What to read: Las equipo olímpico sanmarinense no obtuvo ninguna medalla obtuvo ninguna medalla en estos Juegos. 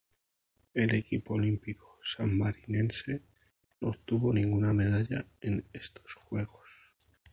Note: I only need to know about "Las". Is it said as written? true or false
false